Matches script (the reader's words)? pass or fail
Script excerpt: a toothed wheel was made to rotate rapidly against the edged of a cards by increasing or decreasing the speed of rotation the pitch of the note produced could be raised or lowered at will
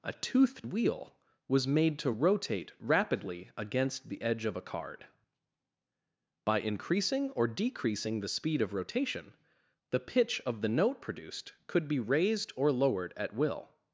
fail